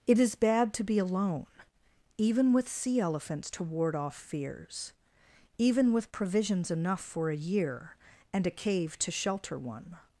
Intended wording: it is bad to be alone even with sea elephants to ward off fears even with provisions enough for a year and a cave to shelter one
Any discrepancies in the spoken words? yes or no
no